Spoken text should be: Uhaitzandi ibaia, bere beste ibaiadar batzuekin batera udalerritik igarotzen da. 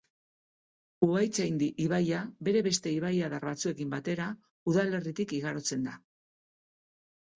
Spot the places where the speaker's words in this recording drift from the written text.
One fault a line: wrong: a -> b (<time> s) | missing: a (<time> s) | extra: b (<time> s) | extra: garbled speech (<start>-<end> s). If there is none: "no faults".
no faults